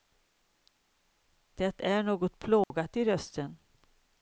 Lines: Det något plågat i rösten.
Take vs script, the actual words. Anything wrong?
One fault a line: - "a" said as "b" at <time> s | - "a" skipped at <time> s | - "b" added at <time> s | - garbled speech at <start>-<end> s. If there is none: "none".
- "är" added at 1.8 s